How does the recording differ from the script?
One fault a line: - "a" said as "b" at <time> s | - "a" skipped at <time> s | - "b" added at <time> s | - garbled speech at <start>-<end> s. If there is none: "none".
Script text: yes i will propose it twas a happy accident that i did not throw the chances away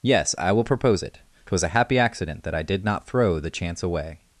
- "chances" said as "chance" at 3.5 s